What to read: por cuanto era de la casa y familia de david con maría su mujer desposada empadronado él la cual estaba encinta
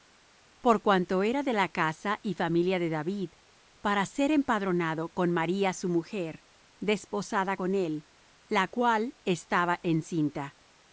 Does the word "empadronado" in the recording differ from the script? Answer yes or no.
yes